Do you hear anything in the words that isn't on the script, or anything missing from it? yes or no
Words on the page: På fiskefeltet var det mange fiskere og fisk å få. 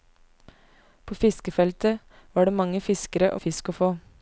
no